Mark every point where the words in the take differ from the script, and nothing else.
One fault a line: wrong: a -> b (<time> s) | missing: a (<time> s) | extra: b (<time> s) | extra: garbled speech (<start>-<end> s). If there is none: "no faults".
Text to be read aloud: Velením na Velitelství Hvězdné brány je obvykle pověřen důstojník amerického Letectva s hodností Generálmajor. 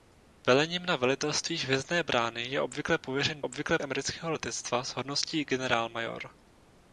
wrong: důstojník -> obvykle (3.4 s)